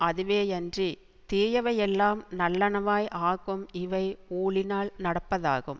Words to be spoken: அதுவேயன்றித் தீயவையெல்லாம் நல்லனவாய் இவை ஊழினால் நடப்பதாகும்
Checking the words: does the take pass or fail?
fail